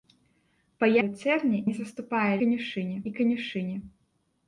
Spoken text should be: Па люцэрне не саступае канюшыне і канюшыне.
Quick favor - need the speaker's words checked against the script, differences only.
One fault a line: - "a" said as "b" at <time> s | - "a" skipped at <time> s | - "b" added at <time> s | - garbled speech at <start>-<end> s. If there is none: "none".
none